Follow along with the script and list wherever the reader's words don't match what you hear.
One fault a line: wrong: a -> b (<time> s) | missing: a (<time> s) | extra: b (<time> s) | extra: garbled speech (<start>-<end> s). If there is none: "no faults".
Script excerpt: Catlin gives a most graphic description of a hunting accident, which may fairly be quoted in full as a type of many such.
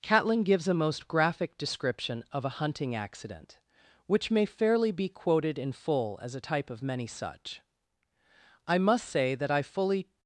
extra: I must say that I fully (8.7 s)